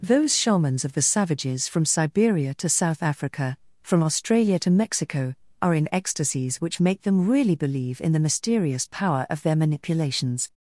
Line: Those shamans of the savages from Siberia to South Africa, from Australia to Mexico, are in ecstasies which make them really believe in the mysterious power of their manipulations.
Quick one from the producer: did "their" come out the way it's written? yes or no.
yes